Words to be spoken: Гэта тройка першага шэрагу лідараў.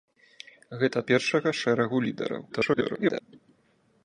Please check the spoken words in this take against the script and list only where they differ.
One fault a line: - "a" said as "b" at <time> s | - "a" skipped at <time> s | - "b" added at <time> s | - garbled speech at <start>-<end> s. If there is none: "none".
- "тройка" skipped at 1.0 s
- garbled speech at 2.5-3.2 s